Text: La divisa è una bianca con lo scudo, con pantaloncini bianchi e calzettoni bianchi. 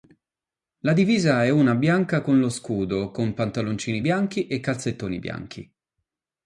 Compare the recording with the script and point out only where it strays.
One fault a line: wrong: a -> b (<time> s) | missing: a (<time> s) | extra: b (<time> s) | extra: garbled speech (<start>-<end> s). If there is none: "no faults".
no faults